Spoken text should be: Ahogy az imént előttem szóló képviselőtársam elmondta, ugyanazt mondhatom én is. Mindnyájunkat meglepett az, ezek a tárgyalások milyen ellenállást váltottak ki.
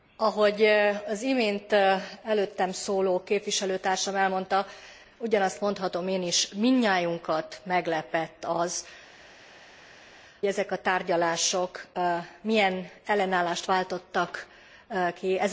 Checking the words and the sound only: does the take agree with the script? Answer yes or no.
yes